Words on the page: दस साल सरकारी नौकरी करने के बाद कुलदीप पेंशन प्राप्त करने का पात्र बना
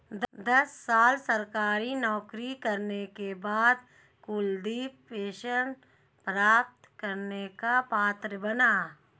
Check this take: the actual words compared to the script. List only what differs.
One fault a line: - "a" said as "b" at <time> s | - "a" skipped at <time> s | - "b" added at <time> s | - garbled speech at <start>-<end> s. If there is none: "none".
none